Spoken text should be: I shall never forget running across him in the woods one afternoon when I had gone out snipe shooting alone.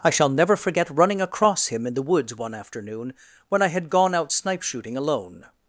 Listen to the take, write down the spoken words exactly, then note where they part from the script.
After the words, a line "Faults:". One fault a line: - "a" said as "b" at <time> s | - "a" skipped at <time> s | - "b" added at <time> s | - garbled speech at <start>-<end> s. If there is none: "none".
I shall never forget running across him in the woods one afternoon when I had gone out snipe shooting alone.
Faults:
none